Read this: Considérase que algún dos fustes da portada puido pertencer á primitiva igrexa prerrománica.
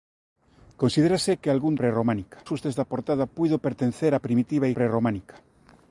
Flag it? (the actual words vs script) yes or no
yes